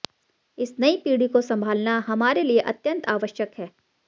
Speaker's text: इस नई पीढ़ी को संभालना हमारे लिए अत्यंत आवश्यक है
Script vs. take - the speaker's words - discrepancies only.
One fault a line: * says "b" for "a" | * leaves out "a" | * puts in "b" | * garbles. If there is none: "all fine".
all fine